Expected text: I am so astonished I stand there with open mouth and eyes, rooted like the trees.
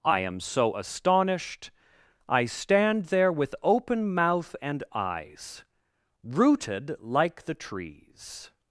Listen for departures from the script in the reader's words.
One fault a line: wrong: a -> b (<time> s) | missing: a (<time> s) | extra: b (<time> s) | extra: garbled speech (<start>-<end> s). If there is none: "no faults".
no faults